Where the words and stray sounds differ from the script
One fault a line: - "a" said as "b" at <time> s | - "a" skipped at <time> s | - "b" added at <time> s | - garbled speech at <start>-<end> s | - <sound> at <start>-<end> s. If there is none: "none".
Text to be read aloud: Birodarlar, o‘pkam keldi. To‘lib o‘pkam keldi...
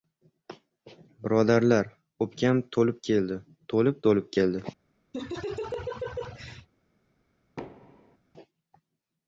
- "to‘lib" added at 2.8 s
- "o‘pkam" said as "to‘lib" at 4.1 s
- laugh at 5.1-6.7 s
- thud at 7.6-8.2 s